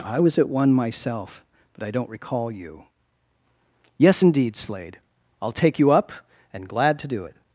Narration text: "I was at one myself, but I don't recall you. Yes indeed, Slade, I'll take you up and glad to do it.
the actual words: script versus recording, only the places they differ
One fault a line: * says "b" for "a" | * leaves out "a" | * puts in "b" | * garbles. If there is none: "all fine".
all fine